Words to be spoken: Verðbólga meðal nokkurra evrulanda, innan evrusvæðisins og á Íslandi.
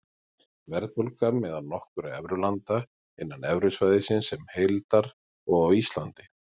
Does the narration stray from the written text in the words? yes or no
yes